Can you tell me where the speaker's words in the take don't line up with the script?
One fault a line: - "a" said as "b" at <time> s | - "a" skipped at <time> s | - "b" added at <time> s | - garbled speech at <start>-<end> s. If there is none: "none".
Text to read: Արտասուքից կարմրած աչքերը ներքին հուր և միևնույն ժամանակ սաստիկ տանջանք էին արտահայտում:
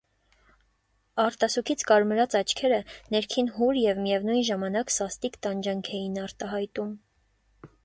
none